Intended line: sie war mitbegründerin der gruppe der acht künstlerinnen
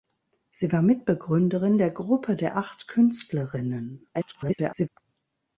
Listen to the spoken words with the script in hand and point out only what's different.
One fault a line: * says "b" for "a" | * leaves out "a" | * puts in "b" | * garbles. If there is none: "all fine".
* garbles